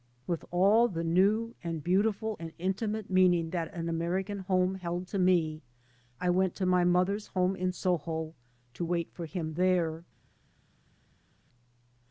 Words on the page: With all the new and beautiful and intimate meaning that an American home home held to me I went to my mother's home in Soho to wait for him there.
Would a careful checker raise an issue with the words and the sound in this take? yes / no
yes